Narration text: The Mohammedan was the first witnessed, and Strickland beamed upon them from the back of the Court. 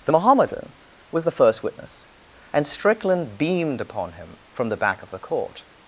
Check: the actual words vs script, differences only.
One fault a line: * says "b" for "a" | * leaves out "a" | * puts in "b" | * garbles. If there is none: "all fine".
* says "witness" for "witnessed"
* says "him" for "them"